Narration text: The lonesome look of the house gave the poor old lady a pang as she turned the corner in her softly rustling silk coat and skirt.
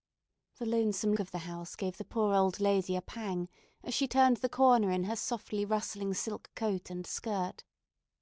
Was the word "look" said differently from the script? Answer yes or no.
yes